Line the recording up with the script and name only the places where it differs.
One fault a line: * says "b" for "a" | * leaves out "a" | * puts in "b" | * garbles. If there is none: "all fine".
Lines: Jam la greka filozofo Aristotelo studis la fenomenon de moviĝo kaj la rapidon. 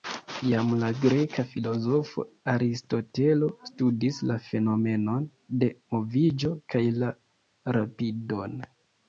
all fine